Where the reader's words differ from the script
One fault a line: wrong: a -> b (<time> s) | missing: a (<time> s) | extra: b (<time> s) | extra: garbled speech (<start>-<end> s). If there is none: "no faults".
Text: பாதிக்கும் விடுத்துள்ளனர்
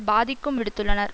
no faults